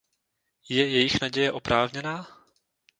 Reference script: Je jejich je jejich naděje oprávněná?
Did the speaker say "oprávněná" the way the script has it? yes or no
yes